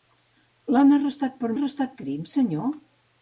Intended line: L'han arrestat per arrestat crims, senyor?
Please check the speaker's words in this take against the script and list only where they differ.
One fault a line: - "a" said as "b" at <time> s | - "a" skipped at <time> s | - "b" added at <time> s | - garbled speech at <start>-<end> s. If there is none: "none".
none